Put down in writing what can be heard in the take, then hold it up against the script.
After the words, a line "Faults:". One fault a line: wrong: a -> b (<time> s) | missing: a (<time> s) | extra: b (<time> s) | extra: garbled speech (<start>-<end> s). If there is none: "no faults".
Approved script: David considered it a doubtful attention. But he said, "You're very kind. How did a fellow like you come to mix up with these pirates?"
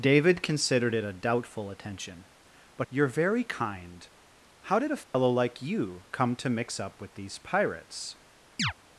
David considered it a doubtful attention. But "You're very kind. How did a fellow like you come to mix up with these pirates?"
Faults:
missing: he said (2.9 s)